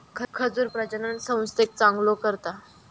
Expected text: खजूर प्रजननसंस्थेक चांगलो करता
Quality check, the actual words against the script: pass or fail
pass